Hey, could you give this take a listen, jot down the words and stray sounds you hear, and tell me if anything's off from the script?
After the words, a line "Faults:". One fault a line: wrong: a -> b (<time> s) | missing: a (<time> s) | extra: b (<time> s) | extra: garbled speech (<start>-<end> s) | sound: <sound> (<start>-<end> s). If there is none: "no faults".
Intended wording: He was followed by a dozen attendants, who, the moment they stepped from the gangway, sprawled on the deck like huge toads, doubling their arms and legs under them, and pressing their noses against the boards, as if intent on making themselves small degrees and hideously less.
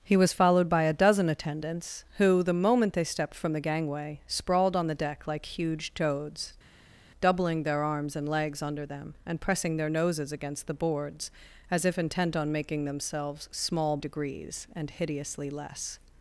He was followed by a dozen attendants, who, the moment they stepped from the gangway, sprawled on the deck like huge toads, doubling their arms and legs under them, and pressing their noses against the boards, as if intent on making themselves small degrees and hideously less.
Faults:
no faults